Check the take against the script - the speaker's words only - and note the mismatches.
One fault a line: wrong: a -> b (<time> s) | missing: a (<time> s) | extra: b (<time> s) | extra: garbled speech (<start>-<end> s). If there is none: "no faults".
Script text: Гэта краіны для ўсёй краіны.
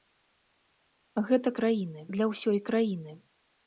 no faults